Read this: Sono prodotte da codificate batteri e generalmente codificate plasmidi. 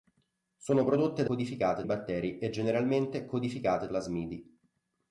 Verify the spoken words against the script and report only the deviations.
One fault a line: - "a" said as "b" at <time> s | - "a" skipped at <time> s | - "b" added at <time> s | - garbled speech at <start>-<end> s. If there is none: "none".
none